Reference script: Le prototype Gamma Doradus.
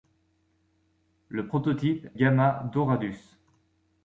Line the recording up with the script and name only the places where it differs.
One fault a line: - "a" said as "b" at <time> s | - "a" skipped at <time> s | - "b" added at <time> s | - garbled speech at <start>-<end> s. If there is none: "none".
none